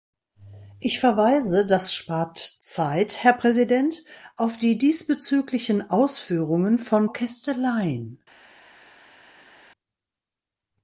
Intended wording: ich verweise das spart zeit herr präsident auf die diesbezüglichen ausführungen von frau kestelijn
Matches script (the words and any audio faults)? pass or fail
fail